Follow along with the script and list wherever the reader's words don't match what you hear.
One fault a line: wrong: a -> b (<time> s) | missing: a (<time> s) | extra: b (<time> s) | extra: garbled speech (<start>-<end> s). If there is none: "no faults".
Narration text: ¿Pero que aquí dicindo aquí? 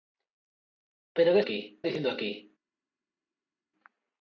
no faults